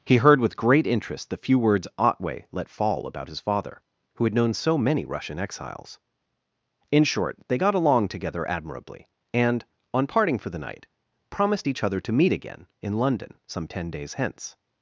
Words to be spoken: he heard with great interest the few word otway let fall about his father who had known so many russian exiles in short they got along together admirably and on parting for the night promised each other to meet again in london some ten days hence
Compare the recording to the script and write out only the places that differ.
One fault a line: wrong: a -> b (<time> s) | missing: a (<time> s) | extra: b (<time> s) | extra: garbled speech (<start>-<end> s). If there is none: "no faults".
wrong: word -> words (1.6 s)